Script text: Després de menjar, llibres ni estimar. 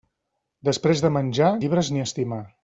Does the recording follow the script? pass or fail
pass